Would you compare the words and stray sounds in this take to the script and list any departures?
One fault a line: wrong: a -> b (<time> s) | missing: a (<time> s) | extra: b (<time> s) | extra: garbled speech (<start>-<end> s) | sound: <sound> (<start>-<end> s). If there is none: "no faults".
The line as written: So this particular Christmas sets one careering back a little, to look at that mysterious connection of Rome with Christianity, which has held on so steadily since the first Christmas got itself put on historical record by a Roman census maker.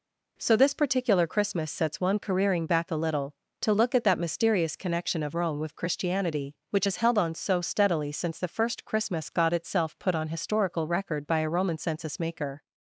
no faults